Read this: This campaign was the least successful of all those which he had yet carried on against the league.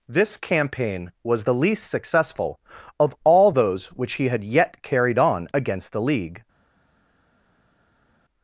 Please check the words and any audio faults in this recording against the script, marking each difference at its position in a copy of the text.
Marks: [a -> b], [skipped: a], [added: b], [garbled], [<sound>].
This campaign was the least successful of all those which he had yet carried on against the league.